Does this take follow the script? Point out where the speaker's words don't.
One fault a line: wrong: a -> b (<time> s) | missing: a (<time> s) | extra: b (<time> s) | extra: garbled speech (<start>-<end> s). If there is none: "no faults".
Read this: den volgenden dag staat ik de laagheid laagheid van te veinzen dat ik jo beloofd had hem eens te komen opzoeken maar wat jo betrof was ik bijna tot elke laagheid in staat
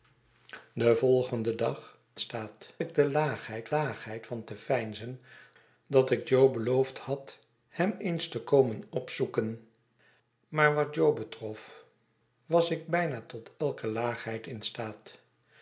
no faults